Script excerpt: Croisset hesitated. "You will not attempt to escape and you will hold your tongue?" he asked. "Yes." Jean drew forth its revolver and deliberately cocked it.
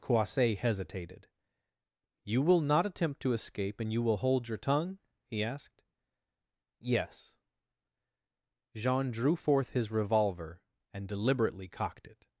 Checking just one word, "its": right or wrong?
wrong